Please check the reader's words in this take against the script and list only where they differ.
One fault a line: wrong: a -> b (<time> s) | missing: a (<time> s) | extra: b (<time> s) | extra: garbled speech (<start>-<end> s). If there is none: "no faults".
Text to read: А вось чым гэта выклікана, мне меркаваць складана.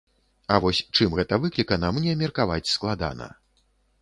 no faults